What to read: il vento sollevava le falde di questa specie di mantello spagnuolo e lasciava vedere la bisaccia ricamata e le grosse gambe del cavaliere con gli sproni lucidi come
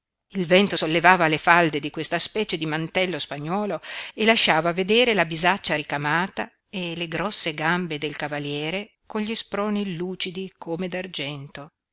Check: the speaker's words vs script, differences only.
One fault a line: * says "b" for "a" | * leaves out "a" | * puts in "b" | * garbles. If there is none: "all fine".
all fine